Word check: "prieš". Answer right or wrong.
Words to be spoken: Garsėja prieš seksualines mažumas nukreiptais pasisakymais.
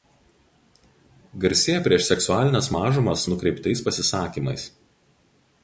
right